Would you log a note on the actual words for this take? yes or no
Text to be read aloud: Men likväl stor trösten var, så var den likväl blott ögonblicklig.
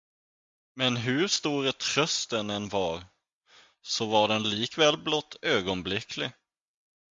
yes